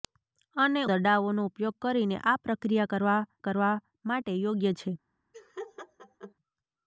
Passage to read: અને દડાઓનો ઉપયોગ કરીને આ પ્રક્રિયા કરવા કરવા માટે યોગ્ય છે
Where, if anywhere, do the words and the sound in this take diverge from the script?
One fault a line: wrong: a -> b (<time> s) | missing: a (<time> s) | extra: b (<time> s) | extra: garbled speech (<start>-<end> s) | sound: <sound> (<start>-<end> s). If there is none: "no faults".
sound: laugh (5.3-6.3 s)